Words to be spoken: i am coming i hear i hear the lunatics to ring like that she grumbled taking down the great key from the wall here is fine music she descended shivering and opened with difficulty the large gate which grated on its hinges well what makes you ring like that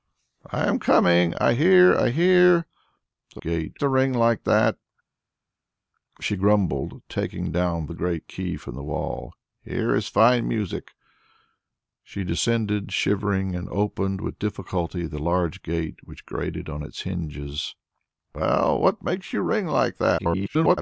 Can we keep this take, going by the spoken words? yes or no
no